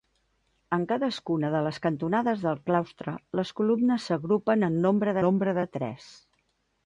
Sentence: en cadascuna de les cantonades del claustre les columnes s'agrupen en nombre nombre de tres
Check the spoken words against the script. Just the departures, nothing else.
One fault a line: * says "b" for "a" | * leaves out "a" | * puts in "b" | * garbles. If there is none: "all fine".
all fine